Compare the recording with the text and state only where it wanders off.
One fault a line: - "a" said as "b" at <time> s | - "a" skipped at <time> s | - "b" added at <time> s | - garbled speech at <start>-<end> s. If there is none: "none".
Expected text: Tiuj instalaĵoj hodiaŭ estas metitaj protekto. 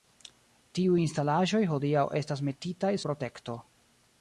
none